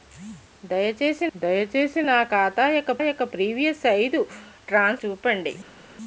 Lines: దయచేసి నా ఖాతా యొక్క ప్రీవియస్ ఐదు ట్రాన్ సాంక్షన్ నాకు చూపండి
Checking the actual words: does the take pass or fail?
fail